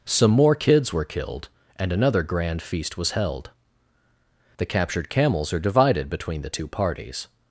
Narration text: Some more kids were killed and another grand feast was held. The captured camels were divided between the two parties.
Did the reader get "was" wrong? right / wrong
right